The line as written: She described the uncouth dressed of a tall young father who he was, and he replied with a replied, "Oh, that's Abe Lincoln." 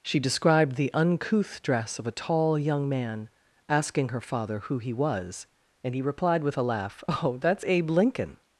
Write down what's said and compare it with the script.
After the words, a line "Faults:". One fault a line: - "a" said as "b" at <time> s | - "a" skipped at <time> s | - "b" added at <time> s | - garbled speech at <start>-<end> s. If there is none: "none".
She described the uncouth dress of a tall young man, asking her father who he was, and he replied with a laugh, "Oh, that's Abe Lincoln."
Faults:
- "dressed" said as "dress" at 1.6 s
- "man asking her" added at 2.9 s
- "replied" said as "laugh" at 6.6 s